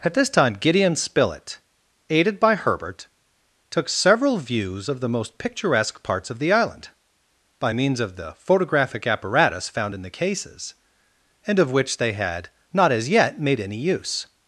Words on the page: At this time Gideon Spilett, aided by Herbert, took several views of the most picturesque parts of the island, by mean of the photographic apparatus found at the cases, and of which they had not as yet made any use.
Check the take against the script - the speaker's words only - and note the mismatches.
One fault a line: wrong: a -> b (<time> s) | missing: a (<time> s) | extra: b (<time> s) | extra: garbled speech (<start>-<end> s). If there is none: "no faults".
wrong: mean -> means (7.7 s)
wrong: at -> in (9.9 s)